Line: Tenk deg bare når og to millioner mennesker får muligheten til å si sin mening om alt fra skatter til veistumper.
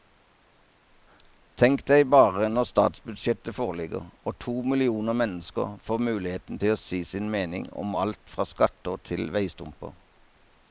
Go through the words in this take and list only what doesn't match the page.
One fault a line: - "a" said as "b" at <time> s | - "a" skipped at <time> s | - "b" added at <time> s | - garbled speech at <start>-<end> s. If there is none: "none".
- "statsbudsjettet foreligger" added at 2.7 s